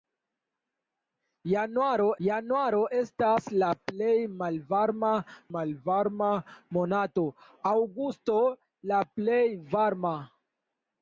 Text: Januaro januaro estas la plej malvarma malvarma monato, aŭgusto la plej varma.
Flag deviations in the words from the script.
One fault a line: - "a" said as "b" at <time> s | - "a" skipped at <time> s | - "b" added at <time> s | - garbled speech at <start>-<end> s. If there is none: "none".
none